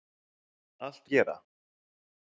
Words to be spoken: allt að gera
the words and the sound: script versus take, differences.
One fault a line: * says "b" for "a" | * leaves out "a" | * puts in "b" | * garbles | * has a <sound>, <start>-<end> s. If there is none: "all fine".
all fine